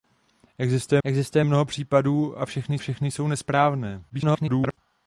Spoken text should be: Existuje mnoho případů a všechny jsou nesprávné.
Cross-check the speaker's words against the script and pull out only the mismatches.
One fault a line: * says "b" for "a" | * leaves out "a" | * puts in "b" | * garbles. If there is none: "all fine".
* puts in "existuje"
* puts in "všechny"
* garbles